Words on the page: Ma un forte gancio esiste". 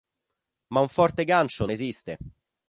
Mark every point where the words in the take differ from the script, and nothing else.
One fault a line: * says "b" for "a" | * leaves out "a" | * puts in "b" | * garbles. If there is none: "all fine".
all fine